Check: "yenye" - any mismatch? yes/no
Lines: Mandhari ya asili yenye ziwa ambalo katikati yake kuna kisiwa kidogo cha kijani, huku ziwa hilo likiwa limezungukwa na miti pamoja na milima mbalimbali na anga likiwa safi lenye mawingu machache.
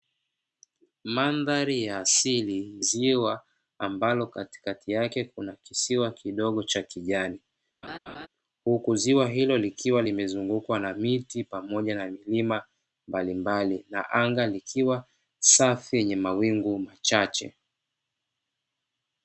yes